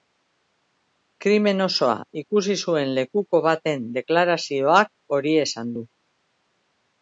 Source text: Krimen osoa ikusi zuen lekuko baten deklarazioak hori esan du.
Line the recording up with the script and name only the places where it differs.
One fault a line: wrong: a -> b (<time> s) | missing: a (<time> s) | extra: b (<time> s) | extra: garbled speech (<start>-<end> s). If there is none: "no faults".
no faults